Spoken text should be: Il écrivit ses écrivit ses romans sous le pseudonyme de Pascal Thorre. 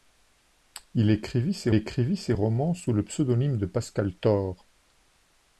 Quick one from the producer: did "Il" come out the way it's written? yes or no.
yes